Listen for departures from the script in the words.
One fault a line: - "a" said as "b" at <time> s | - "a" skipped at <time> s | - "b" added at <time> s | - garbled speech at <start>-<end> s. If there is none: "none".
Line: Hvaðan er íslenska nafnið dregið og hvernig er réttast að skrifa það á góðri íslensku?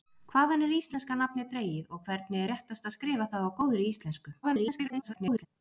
- garbled speech at 4.4-5.5 s